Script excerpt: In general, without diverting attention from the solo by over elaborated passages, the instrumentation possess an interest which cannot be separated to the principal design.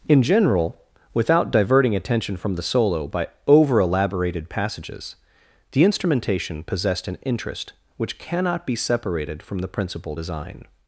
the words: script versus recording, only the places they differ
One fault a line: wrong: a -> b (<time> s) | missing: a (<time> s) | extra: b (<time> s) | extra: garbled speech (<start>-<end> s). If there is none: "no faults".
wrong: possess -> possessed (6.6 s)
wrong: to -> from (9.4 s)